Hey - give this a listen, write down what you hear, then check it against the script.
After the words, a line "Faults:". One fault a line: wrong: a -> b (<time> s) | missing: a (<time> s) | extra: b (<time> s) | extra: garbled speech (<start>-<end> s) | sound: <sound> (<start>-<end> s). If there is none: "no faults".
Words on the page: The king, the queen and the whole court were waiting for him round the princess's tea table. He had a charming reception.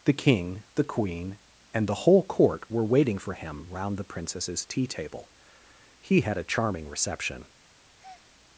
The king, the queen and the whole court were waiting for him round the princess's tea table. He had a charming reception.
Faults:
sound: breath (8.0-8.3 s)